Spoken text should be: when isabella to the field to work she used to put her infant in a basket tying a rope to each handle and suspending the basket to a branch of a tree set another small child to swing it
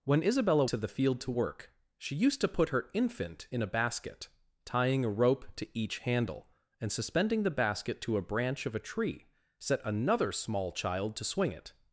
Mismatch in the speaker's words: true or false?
false